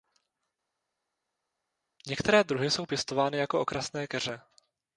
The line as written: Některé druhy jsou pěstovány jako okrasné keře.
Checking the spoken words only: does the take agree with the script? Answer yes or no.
yes